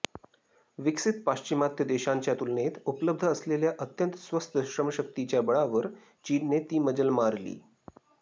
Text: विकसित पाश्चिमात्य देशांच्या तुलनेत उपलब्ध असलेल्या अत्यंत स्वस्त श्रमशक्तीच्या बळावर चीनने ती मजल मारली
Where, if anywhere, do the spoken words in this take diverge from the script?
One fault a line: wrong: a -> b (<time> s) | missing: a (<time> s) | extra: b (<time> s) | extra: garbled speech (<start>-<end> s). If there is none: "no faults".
no faults